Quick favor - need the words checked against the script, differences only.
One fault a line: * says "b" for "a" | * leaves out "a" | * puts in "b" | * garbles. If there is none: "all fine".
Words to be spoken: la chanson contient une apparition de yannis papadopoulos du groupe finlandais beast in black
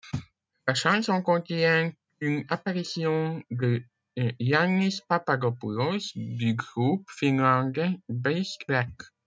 * leaves out "in"